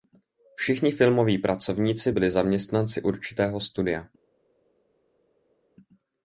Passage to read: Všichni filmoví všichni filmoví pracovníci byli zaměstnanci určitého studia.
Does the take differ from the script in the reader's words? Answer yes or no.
yes